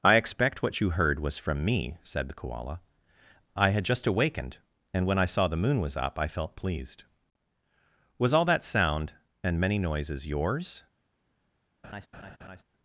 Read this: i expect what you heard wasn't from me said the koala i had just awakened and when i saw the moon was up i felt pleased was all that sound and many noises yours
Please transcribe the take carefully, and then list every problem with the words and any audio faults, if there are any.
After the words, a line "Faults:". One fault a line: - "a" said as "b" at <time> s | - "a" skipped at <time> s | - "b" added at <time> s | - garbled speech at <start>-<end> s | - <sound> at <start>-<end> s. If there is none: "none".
i expect what you heard was from me said the koala i had just awakened and when i saw the moon was up i felt pleased was all that sound and many noises yours
Faults:
- "wasn't" said as "was" at 1.2 s
- laugh at 11.8-12.6 s